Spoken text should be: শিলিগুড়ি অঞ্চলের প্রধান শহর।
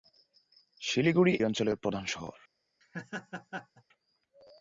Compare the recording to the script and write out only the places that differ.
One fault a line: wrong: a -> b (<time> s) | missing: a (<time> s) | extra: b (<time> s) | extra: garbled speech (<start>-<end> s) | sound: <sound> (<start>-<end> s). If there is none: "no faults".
sound: laugh (2.8-3.8 s)